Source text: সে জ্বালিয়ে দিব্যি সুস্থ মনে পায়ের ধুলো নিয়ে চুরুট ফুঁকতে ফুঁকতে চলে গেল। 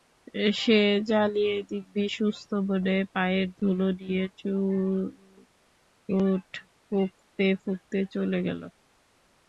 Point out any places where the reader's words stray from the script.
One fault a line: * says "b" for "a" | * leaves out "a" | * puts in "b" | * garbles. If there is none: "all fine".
all fine